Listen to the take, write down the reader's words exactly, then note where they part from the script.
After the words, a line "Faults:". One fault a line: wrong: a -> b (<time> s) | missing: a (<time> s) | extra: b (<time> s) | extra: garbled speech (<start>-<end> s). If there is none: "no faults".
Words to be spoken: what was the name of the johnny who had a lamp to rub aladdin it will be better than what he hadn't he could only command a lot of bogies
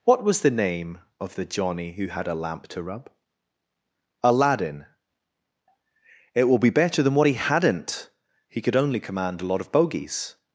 what was the name of the johnny who had a lamp to rub aladdin it will be better than what he hadn't he could only command a lot of bogies
Faults:
no faults